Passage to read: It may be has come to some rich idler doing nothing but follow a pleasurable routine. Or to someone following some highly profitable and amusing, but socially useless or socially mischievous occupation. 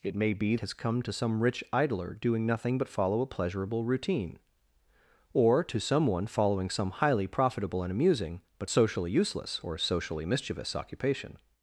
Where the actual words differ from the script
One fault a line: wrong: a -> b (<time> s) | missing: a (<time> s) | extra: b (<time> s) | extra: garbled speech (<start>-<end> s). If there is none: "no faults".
no faults